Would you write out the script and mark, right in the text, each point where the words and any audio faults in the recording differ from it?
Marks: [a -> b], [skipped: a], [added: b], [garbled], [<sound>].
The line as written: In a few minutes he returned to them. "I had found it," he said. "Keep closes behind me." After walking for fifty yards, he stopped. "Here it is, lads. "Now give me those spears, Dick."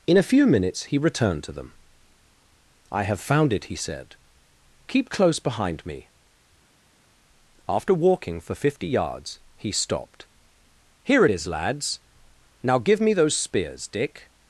In a few minutes he returned to them. "I [had -> have] found it," he said. "Keep [closes -> close] behind me." After walking for fifty yards, he stopped. "Here it is, lads. "Now give me those spears, Dick."